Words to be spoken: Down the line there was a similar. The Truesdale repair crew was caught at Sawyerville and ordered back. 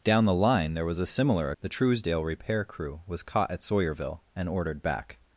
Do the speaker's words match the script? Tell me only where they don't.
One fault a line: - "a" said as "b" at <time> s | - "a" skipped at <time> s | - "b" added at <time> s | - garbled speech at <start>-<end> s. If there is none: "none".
none